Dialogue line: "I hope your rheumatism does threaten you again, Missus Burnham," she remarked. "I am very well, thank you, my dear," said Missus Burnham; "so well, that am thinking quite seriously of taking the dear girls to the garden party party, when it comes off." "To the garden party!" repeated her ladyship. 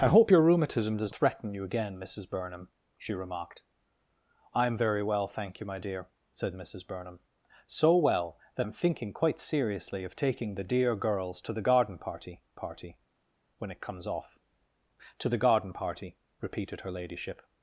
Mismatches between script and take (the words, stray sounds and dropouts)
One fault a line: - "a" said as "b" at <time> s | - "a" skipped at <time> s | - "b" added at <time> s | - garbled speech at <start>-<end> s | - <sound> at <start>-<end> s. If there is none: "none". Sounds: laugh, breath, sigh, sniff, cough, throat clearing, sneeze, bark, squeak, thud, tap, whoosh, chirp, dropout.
none